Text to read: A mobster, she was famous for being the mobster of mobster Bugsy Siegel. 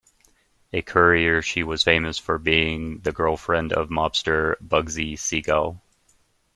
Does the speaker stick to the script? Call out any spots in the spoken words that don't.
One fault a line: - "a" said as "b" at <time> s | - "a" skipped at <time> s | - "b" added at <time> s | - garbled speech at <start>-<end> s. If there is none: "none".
- "mobster" said as "courier" at 0.8 s
- "mobster" said as "girlfriend" at 3.1 s